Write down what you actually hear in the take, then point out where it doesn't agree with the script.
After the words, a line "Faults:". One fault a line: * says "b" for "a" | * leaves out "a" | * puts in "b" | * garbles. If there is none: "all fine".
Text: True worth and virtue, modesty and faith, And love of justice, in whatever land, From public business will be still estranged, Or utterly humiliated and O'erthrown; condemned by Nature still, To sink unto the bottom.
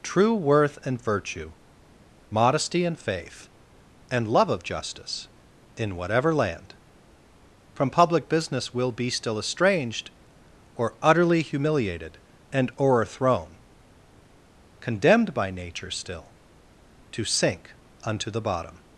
True worth and virtue, modesty and faith, And love of justice, in whatever land, From public business will be still estranged, Or utterly humiliated and O'erthrown; condemned by Nature still, To sink unto the bottom.
Faults:
all fine